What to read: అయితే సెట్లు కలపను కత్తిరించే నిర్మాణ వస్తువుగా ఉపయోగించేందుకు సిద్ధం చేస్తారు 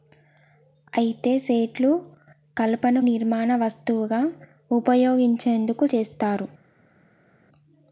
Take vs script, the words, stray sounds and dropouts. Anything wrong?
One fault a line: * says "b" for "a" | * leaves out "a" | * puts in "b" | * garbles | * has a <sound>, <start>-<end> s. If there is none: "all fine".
* leaves out "కత్తిరించే"
* leaves out "సిద్ధం"